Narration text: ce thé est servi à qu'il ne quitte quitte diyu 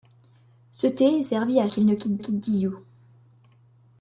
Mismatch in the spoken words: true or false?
false